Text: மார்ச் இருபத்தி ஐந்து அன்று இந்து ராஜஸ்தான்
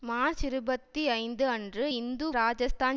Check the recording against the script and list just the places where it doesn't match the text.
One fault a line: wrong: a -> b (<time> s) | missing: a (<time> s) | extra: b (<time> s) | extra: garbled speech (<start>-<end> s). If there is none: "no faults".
no faults